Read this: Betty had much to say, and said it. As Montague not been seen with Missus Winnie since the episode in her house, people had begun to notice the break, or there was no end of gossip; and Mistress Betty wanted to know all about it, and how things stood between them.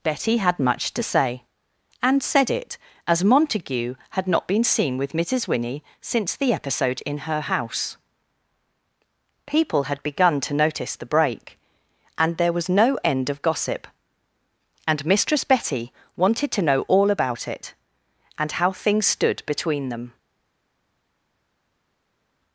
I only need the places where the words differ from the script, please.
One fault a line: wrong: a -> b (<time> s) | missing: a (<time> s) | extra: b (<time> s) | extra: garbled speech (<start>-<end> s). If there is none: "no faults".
extra: had (4.1 s)
wrong: or -> and (12.2 s)